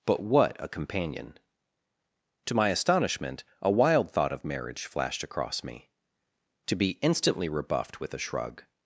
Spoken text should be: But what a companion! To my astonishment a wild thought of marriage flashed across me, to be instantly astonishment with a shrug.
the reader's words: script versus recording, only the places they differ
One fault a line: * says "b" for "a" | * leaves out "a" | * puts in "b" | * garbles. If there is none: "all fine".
* says "rebuffed" for "astonishment"